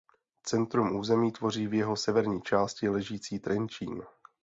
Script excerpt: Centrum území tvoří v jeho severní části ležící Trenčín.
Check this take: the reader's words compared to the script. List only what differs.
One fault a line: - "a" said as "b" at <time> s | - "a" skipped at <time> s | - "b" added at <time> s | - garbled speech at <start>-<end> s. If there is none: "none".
none